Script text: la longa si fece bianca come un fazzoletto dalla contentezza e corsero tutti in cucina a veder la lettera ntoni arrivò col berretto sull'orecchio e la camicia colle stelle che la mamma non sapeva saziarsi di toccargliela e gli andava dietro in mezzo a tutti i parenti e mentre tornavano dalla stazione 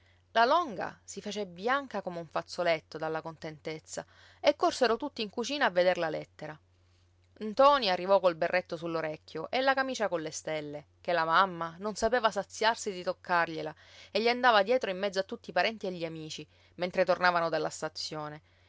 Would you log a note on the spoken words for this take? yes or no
yes